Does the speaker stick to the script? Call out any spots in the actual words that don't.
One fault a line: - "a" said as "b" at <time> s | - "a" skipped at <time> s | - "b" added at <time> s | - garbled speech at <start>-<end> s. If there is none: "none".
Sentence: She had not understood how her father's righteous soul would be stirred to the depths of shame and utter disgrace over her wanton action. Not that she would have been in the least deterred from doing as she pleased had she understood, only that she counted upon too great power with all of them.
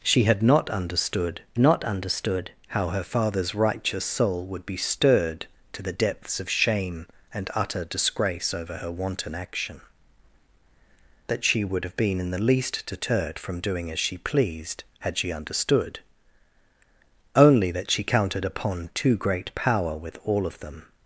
- "not understood" added at 1.6 s
- "Not" skipped at 9.8 s